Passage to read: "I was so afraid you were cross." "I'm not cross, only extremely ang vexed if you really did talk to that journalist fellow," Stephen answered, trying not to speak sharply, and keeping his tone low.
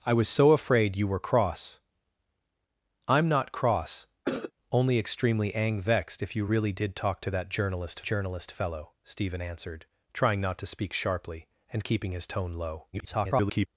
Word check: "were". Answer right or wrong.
right